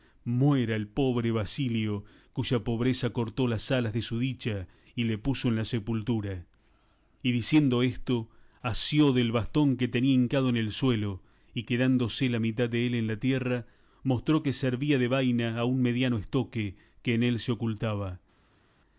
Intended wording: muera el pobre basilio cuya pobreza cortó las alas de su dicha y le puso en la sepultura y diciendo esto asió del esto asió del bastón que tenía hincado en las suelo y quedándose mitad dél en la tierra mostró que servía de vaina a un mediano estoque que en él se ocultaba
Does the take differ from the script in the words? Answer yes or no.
yes